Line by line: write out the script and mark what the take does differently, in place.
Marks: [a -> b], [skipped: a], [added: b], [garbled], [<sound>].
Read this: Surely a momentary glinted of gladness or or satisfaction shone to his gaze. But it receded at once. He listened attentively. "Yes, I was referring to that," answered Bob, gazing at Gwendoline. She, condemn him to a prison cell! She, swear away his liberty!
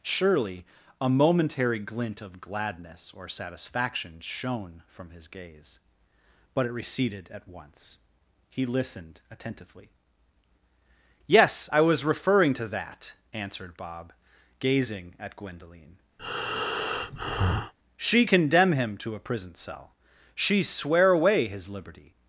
Surely a momentary [glinted -> glint] of gladness or [skipped: or] satisfaction shone [to -> from] his gaze. But it receded at once. He listened attentively. "Yes, I was referring to that," answered Bob, gazing at Gwendoline. [breath] She, condemn him to a prison cell! She, swear away his liberty!